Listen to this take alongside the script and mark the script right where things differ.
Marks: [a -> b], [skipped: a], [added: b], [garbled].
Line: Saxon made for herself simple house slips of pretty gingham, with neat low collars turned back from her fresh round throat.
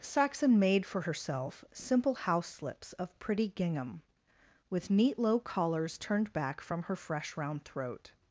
Saxon made for herself simple house slips of pretty gingham, with neat low collars turned back from her fresh round throat.